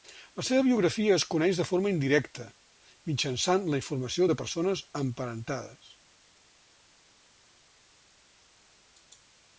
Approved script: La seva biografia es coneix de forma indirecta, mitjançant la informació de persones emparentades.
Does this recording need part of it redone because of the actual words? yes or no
no